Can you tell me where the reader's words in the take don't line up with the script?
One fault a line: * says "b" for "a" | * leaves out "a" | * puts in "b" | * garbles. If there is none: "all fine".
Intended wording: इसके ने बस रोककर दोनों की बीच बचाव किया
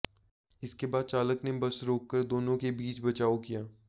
* puts in "बाद चालक"
* says "के" for "की"